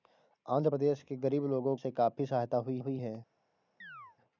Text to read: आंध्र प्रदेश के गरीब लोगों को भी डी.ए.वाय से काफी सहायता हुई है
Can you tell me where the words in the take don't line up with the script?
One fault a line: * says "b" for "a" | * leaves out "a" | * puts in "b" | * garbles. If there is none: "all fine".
* leaves out "को भी डी.ए.वाय"
* puts in "हुई"